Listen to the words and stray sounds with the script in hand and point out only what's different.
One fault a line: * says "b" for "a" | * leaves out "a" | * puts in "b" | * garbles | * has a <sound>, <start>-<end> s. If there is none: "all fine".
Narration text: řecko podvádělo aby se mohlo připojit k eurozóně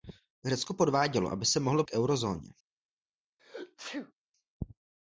* leaves out "připojit"
* has a sneeze, 3.4-4.1 s